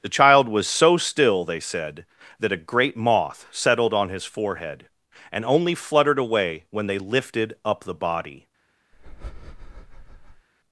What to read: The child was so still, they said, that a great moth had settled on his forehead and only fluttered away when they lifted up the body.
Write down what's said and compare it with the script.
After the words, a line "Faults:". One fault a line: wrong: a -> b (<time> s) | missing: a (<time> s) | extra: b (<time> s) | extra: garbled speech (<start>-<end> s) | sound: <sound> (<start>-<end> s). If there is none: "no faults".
The child was so still, they said, that a great moth settled on his forehead and only fluttered away when they lifted up the body.
Faults:
missing: had (3.5 s)
sound: breath (8.9-10.5 s)